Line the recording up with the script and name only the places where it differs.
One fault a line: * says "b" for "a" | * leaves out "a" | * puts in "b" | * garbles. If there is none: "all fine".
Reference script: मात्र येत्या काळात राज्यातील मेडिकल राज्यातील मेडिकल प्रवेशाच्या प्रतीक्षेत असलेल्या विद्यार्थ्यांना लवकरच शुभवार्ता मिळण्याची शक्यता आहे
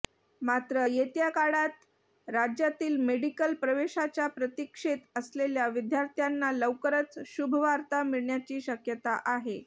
* leaves out "राज्यातील मेडिकल"